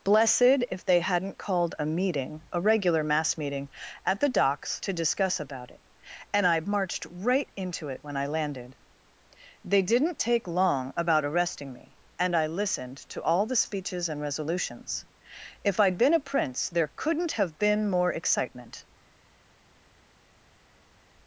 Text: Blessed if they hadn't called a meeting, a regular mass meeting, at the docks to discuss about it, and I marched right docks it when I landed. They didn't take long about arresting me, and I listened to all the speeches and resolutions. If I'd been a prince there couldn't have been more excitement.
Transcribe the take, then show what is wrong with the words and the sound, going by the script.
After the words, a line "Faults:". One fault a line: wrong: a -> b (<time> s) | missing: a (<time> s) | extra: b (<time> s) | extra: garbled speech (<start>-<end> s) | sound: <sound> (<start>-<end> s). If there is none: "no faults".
Blessed if they hadn't called a meeting, a regular mass meeting, at the docks to discuss about it, and I marched right into it when I landed. They didn't take long about arresting me, and I listened to all the speeches and resolutions. If I'd been a prince there couldn't have been more excitement.
Faults:
wrong: docks -> into (7.5 s)